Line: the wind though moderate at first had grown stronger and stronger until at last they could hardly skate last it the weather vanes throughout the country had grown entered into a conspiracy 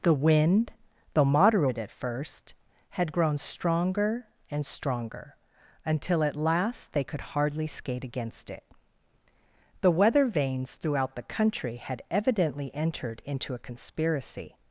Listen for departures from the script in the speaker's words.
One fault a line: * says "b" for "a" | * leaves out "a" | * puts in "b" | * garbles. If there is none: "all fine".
* says "against" for "last"
* says "evidently" for "grown"